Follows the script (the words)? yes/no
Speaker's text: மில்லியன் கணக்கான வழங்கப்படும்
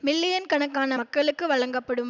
no